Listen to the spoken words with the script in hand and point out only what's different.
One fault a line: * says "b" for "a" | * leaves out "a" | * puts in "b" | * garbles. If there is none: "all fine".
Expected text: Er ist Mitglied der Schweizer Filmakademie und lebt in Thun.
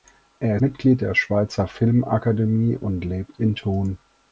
* leaves out "ist"